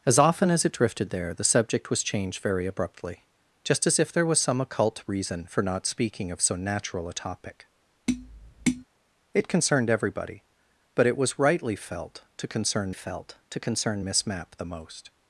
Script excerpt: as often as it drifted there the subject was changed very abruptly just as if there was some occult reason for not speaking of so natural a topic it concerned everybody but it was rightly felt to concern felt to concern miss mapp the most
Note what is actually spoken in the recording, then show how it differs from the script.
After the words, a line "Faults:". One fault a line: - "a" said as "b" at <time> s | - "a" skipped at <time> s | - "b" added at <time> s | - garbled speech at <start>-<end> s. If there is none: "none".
as often as it drifted there the subject was changed very abruptly just as if there was some occult reason for not speaking of so natural a topic it concerned everybody but it was rightly felt to concern felt to concern miss mapp the most
Faults:
none